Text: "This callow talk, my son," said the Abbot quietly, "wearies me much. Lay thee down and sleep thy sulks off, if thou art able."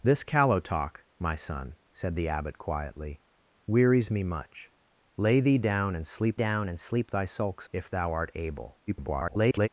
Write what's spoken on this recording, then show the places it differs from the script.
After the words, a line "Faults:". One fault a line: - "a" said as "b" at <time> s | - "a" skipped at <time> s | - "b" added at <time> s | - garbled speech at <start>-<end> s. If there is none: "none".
"This callow talk, my son," said the Abbot quietly, "wearies me much. Lay thee down and sleep down and sleep thy sulks if thou art able." [garbled]
Faults:
- "down and sleep" added at 6.3 s
- "off" skipped at 7.7 s
- garbled speech at 8.9-9.7 s